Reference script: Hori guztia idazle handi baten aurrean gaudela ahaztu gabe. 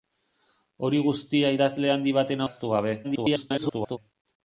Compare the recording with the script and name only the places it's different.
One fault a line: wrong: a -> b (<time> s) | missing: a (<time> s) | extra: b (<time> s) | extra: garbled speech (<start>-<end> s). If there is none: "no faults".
missing: aurrean gaudela (2.5 s)
extra: garbled speech (3.0-4.0 s)